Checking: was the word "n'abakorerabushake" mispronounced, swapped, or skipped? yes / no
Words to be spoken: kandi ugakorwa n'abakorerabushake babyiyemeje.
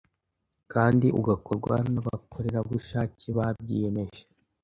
no